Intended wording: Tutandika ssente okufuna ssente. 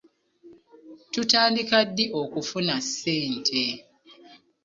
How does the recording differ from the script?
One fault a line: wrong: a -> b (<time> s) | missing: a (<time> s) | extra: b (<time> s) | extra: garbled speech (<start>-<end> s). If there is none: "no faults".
wrong: ssente -> ddi (1.9 s)